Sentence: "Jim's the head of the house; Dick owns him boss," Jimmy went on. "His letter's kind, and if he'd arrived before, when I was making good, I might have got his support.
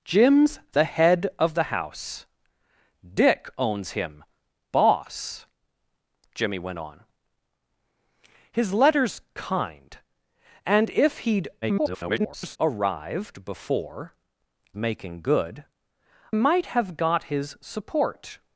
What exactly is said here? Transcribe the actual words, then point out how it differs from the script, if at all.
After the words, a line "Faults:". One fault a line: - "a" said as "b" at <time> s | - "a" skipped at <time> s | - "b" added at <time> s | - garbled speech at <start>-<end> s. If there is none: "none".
"Jim's the head of the house; Dick owns him boss," Jimmy went on. "His letter's kind, and if he'd [garbled] arrived before, making good, might have got his support.
Faults:
- garbled speech at 11.6-12.6 s
- "when I was" skipped at 14.1 s
- "I" skipped at 15.6 s